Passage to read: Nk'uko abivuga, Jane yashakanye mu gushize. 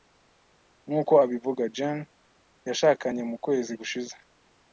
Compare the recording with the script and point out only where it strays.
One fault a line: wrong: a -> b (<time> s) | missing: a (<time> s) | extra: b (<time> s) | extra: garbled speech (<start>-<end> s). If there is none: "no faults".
extra: kwezi (3.4 s)